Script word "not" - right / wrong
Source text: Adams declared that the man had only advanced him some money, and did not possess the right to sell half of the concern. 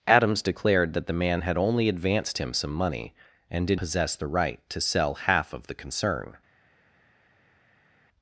wrong